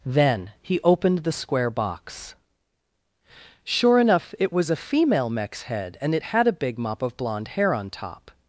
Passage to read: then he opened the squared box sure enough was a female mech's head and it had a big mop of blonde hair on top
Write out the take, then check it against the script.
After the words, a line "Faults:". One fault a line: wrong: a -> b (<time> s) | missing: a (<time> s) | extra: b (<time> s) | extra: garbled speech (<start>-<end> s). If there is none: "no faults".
then he opened the square box sure enough it was a female mech's head and it had a big mop of blonde hair on top
Faults:
wrong: squared -> square (1.3 s)
extra: it (4.4 s)